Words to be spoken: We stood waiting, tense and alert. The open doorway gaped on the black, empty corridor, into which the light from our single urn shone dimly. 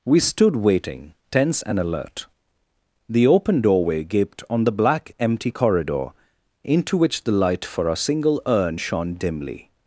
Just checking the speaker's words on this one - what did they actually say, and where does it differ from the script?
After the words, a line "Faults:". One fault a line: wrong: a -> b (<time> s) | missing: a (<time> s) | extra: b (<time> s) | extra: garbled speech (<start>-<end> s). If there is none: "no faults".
We stood waiting, tense and alert. The open doorway gaped on the black, empty corridor, into which the light for our single urn shone dimly.
Faults:
wrong: from -> for (7.7 s)